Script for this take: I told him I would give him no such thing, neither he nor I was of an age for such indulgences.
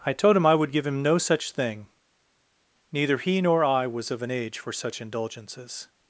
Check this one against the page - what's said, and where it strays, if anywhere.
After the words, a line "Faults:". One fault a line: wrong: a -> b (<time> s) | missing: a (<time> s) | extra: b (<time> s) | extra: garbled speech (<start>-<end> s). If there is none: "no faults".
I told him I would give him no such thing, neither he nor I was of an age for such indulgences.
Faults:
no faults